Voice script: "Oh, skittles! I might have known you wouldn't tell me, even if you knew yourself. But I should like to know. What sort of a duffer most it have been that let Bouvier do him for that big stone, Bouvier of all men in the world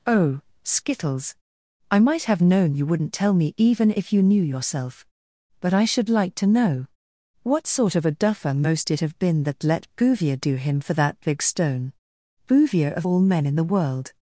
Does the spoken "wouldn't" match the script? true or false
true